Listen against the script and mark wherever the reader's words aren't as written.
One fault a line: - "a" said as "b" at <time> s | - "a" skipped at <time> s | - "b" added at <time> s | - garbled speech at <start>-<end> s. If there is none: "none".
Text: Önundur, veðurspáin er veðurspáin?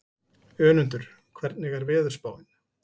- "veðurspáin" said as "hvernig" at 1.4 s